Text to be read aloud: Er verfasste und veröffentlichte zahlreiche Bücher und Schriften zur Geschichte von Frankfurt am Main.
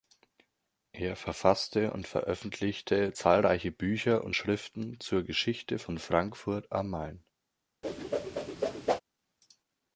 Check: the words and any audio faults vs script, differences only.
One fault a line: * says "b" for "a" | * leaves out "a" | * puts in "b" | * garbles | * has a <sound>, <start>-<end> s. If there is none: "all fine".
* has a whoosh, 7.8-9.0 s